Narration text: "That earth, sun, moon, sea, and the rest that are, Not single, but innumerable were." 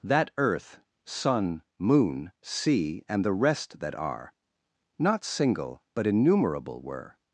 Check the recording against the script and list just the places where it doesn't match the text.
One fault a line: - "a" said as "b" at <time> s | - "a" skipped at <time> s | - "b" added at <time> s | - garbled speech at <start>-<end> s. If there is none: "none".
none